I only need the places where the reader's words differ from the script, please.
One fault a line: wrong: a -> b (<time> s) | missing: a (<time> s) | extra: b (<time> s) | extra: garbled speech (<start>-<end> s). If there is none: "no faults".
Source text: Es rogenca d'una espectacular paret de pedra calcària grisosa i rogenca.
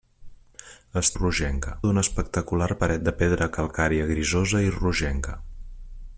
no faults